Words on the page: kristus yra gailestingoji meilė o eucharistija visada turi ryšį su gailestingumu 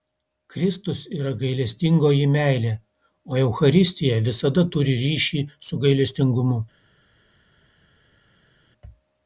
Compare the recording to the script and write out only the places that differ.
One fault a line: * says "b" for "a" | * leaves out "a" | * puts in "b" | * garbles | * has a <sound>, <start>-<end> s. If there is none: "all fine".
all fine